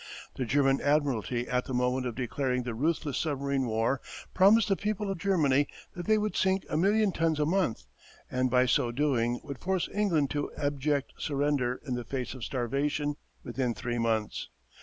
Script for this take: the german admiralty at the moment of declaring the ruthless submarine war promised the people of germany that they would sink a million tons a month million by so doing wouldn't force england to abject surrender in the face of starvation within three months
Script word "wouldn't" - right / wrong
wrong